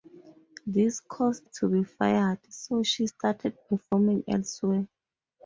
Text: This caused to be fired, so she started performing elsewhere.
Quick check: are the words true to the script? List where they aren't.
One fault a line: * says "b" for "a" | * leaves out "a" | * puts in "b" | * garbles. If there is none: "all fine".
all fine